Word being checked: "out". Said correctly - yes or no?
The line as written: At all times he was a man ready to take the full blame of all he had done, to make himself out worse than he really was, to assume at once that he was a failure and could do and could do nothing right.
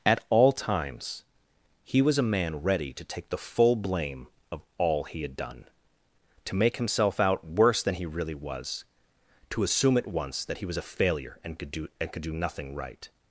yes